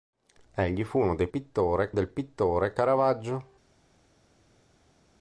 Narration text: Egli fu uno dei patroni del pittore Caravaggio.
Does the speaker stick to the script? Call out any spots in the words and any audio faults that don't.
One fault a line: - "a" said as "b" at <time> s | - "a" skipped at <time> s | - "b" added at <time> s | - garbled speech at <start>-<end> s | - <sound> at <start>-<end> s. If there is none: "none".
- "patroni" said as "pittore" at 1.3 s